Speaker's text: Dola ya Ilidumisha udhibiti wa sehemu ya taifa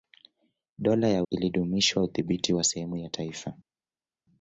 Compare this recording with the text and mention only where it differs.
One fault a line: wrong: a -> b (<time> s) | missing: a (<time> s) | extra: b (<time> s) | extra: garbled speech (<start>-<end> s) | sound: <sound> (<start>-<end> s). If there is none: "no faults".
no faults